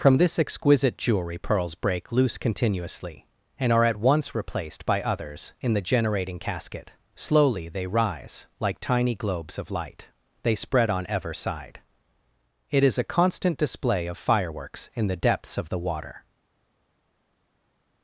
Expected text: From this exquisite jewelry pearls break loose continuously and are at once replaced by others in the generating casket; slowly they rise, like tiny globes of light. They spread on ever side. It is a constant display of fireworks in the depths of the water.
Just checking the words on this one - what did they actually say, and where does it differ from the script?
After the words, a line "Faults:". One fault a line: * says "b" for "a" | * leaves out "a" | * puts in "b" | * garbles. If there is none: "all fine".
From this exquisite jewelry pearls break loose continuously and are at once replaced by others in the generating casket; slowly they rise, like tiny globes of light. They spread on ever side. It is a constant display of fireworks in the depths of the water.
Faults:
all fine